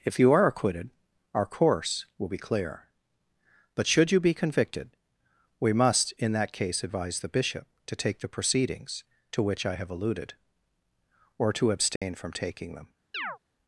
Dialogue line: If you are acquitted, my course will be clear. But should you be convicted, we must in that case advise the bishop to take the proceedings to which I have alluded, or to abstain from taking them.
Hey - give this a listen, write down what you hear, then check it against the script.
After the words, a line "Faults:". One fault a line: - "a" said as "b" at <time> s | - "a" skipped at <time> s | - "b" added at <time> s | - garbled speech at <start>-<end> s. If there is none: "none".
If you are acquitted, our course will be clear. But should you be convicted, we must in that case advise the bishop to take the proceedings to which I have alluded, or to abstain from taking them.
Faults:
- "my" said as "our" at 1.3 s